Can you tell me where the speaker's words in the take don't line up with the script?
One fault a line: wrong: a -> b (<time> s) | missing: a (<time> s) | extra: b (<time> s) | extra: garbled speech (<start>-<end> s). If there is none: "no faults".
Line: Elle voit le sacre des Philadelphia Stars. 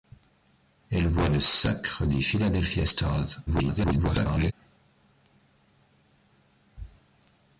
extra: garbled speech (3.5-4.5 s)